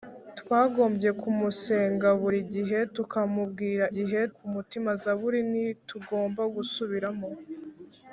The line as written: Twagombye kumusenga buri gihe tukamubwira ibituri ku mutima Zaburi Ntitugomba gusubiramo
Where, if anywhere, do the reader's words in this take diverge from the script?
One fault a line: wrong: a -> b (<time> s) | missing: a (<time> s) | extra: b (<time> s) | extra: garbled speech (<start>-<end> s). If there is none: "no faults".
wrong: ibituri -> gihe (3.9 s)